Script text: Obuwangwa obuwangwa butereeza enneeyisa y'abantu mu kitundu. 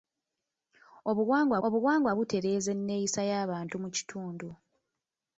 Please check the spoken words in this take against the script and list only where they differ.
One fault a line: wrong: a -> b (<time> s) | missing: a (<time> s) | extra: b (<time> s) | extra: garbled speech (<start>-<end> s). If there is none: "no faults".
no faults